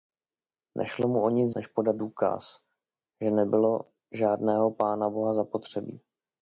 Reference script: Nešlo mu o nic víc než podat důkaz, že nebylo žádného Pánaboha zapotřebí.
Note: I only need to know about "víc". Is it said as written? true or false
false